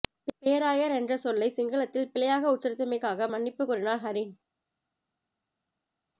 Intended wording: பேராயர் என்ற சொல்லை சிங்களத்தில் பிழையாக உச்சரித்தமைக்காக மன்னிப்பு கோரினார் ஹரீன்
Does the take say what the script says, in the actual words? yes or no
yes